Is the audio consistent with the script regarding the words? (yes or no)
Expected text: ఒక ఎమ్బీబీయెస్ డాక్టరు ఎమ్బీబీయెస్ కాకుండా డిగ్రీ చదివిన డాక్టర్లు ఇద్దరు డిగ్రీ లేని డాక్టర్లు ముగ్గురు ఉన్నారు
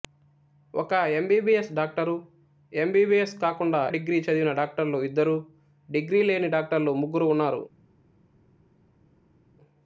yes